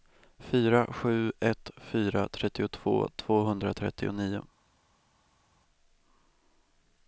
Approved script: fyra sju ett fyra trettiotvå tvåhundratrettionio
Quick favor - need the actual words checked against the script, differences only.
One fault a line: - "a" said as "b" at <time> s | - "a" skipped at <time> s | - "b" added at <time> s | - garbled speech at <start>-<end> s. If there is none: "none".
none